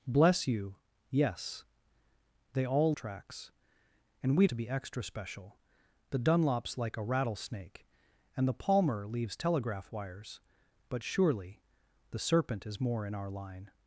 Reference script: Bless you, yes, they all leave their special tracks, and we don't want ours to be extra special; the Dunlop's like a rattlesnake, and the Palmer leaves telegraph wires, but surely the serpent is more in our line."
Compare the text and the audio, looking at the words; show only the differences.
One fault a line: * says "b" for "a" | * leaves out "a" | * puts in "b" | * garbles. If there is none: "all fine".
* leaves out "leave their special"
* leaves out "don't want ours"